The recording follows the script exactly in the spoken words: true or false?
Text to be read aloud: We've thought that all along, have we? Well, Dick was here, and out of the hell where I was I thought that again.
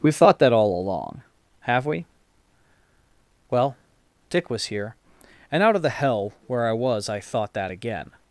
true